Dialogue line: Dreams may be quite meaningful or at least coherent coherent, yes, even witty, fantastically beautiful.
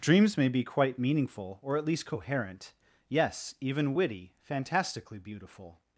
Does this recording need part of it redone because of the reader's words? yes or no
yes